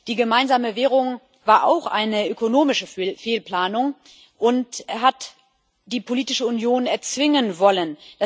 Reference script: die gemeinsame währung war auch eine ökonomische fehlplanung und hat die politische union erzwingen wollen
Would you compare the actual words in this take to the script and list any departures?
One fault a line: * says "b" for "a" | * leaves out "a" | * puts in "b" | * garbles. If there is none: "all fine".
all fine